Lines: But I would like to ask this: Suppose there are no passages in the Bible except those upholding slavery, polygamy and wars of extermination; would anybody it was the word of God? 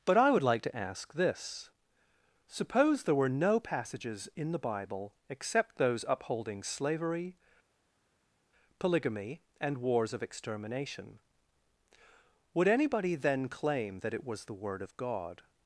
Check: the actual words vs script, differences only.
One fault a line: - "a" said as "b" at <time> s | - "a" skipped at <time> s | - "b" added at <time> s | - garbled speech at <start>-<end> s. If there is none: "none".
- "are" said as "were" at 3.1 s
- "then claim that" added at 13.1 s